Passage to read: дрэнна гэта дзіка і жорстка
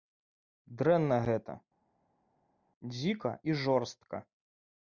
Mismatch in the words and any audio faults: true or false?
false